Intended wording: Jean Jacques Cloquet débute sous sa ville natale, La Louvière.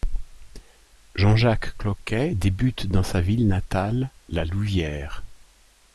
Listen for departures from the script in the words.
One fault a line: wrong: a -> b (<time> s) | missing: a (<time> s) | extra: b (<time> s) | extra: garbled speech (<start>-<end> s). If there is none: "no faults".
wrong: sous -> dans (2.9 s)